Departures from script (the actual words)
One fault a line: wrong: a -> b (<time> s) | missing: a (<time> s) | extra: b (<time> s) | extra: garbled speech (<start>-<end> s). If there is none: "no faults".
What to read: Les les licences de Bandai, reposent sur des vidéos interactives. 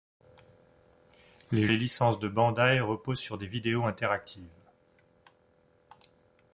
no faults